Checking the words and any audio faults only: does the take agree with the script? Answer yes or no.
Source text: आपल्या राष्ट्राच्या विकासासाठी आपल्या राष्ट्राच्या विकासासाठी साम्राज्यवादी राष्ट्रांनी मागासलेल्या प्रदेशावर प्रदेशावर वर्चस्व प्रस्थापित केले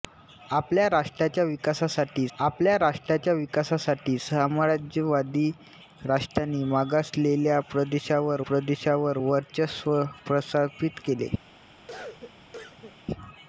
no